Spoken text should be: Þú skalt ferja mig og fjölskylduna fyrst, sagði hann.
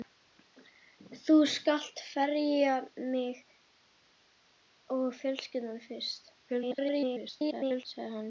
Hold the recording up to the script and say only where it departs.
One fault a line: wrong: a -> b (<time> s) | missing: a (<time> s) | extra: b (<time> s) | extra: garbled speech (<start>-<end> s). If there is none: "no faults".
extra: garbled speech (6.5-7.8 s)